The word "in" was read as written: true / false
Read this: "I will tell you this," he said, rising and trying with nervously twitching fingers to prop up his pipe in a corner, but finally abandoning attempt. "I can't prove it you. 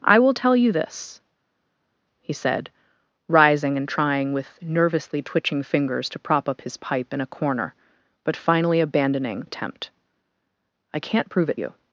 true